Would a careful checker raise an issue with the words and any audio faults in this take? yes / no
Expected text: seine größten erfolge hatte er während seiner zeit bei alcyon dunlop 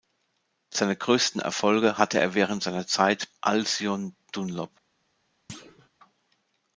yes